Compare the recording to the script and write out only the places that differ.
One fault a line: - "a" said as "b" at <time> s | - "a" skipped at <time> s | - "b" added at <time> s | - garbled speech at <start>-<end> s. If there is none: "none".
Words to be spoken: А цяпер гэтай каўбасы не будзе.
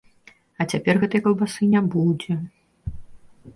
none